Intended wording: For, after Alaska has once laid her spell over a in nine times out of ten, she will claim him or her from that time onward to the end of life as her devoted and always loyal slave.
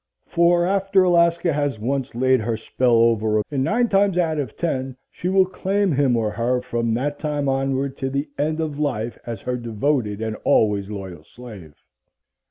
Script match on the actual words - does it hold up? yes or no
yes